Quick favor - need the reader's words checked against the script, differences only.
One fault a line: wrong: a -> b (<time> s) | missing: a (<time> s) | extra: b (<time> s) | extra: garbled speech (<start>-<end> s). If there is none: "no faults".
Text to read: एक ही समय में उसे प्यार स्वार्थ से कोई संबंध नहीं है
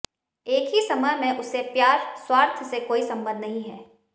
no faults